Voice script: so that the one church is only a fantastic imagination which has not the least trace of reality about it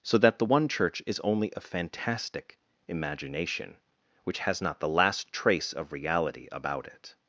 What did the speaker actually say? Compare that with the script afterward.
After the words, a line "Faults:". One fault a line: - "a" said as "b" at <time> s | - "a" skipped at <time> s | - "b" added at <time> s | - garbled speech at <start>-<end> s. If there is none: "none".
so that the one church is only a fantastic imagination which has not the last trace of reality about it
Faults:
- "least" said as "last" at 4.9 s